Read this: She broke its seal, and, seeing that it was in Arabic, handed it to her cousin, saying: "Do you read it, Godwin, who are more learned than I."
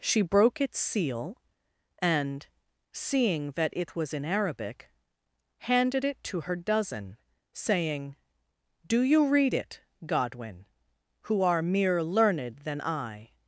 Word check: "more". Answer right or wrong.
wrong